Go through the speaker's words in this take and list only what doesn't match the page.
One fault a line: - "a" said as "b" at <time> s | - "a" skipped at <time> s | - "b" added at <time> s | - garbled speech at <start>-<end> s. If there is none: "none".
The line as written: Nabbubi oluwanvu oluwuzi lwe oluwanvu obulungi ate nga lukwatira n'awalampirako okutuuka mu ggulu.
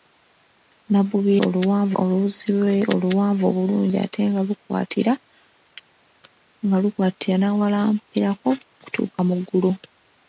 none